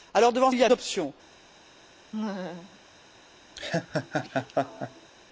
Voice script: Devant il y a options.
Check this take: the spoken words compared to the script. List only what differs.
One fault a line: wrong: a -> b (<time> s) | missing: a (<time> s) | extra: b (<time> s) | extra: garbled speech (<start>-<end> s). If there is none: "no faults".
no faults